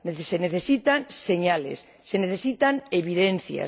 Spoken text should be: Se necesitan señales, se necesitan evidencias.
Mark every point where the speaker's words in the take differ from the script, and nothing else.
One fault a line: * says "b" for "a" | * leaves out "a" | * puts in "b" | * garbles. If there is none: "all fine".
all fine